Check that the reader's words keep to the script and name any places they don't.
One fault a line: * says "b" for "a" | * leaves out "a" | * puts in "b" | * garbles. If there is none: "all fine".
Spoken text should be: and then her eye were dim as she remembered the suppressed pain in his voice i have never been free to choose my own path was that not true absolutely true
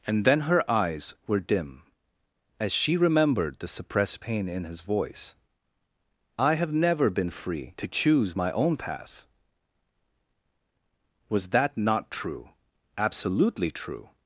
* says "eyes" for "eye"